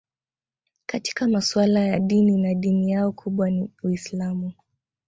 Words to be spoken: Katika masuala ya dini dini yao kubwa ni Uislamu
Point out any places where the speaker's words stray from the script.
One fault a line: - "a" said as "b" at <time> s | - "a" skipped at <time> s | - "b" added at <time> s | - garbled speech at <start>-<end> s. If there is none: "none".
- "na" added at 2.4 s